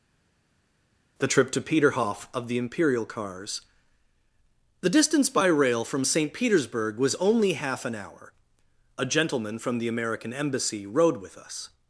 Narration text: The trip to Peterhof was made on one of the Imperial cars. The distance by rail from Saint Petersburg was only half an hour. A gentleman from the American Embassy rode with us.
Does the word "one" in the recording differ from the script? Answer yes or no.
yes